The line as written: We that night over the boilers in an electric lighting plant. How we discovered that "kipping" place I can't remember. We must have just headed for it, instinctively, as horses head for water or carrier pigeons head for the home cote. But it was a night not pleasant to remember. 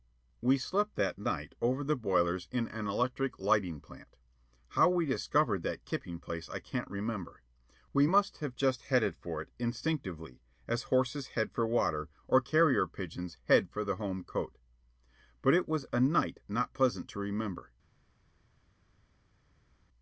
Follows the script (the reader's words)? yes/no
no